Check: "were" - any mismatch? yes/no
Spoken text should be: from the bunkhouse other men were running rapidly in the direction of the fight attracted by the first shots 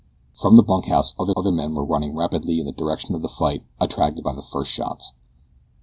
no